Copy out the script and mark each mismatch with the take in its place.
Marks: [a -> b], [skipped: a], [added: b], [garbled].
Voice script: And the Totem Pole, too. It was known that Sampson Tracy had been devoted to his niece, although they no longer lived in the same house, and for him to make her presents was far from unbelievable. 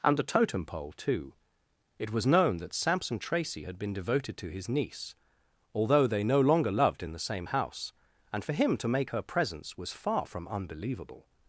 And the Totem Pole, too. It was known that Sampson Tracy had been devoted to his niece, although they no longer [lived -> loved] in the same house, and for him to make her presents was far from unbelievable.